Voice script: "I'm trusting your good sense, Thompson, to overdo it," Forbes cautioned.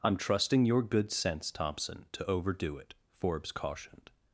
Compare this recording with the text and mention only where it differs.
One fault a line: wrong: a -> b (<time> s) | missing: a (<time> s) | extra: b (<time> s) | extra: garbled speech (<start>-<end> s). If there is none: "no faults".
no faults